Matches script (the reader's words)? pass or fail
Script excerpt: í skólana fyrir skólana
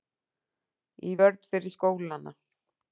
fail